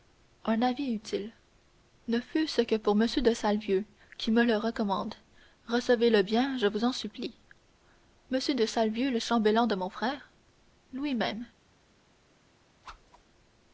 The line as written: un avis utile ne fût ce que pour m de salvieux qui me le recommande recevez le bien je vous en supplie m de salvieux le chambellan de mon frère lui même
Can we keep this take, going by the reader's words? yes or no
yes